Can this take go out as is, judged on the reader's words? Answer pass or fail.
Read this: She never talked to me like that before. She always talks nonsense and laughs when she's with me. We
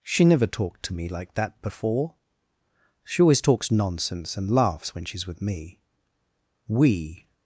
pass